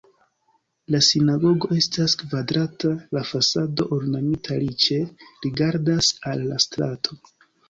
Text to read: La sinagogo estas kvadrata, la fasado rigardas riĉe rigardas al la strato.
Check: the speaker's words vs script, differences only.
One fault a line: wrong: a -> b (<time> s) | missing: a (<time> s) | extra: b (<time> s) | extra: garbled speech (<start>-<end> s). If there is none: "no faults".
wrong: rigardas -> ornamita (4.0 s)